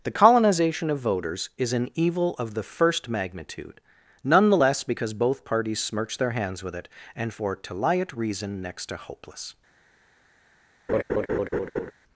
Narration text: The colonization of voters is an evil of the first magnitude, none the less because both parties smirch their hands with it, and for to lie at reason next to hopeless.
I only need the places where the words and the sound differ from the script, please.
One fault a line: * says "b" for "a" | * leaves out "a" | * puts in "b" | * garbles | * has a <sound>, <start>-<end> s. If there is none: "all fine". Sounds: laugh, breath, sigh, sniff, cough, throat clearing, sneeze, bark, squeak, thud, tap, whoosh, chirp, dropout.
* has a laugh, 10.9-11.9 s